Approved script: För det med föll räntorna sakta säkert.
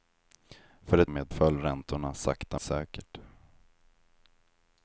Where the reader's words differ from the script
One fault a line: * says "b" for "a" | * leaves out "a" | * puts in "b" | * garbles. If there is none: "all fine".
all fine